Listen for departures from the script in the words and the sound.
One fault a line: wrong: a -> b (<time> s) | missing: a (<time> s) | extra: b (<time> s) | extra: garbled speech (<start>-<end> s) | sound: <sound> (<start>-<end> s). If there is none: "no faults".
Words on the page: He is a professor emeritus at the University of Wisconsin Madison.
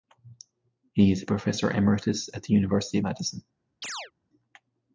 missing: Wisconsin (3.0 s)
sound: chirp (3.8-4.1 s)